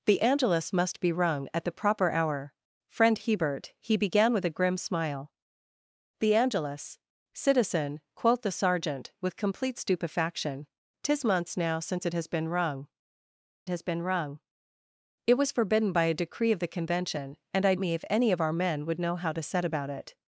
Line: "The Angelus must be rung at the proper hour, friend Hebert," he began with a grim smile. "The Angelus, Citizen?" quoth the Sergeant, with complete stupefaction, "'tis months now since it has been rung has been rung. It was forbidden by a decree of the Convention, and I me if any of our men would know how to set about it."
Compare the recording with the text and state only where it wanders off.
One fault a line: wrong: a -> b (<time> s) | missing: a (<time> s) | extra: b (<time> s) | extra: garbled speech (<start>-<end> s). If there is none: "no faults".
no faults